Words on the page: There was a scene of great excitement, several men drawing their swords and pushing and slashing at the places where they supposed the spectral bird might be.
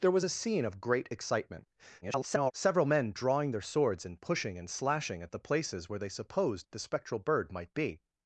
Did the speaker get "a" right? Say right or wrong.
right